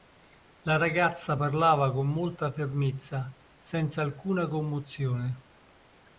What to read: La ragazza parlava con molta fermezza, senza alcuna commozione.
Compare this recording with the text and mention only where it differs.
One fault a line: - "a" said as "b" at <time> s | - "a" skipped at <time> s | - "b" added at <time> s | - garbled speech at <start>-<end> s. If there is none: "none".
none